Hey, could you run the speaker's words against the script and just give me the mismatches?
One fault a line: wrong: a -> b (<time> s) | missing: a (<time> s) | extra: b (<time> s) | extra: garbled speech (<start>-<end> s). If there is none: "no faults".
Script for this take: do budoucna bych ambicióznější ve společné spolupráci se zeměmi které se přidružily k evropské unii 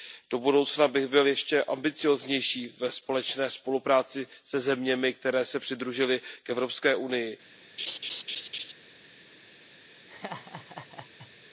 extra: byl ještě (1.1 s)